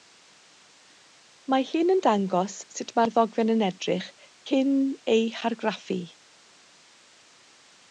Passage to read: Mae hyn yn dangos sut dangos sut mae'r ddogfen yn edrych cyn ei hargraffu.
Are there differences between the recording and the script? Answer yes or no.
yes